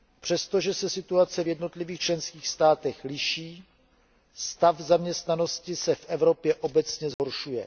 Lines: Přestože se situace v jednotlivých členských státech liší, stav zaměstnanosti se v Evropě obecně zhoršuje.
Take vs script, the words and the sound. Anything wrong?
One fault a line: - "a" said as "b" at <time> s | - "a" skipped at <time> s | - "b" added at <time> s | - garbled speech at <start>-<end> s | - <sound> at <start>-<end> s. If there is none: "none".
- dropout at 7.1-7.2 s